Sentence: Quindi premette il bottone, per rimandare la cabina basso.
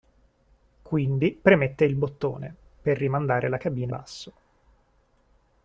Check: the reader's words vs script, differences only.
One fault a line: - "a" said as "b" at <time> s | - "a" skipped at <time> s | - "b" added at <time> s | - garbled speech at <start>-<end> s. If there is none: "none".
none